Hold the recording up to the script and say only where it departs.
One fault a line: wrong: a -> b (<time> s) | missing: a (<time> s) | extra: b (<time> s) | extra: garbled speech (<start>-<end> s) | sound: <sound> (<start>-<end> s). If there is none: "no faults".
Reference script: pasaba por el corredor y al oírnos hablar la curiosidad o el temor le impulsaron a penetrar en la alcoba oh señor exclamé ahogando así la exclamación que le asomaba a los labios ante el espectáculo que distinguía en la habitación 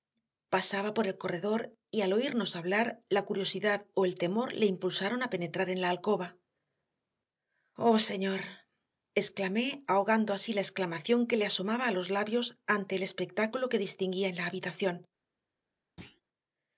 sound: thud (16.0-16.2 s)